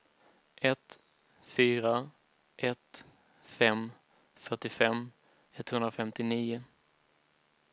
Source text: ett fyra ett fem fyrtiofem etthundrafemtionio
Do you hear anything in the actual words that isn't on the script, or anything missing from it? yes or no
no